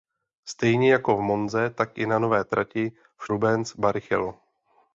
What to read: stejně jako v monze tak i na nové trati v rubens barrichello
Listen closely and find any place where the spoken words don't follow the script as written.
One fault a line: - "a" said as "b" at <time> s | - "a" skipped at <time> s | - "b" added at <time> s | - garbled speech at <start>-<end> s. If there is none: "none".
none